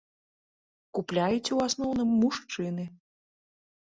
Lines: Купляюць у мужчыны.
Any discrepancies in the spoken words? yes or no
yes